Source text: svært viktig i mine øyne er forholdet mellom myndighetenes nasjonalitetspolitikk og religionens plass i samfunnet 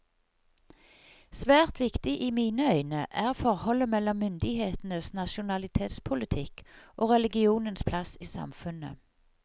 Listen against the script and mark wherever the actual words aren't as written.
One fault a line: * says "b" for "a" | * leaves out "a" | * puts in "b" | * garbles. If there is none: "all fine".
all fine